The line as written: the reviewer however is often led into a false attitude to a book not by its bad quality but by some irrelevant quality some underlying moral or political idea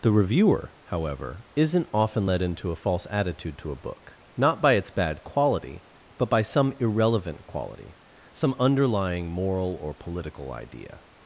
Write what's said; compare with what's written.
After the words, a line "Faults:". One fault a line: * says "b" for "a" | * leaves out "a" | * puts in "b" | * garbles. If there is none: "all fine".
the reviewer however isn't often led into a false attitude to a book not by its bad quality but by some irrelevant quality some underlying moral or political idea
Faults:
* says "isn't" for "is"